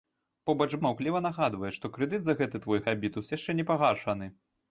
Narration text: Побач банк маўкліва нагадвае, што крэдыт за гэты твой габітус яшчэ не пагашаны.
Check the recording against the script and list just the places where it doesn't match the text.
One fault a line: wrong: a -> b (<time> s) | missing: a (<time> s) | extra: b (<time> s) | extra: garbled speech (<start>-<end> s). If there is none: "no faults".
missing: банк (0.7 s)